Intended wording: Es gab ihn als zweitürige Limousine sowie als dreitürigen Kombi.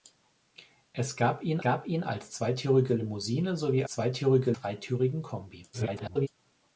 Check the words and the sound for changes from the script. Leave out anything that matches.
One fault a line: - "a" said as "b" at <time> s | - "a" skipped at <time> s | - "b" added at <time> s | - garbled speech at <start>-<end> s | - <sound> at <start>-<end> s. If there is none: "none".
- "gab ihn" added at 1.6 s
- "als" said as "zweitürige" at 3.9 s
- garbled speech at 5.7-6.3 s